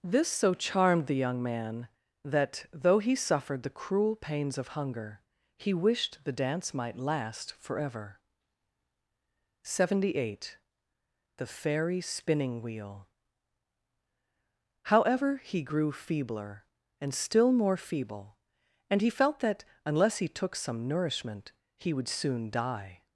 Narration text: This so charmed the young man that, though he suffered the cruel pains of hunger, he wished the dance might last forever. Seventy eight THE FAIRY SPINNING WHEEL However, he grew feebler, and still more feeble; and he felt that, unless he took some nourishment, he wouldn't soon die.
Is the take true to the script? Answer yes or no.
no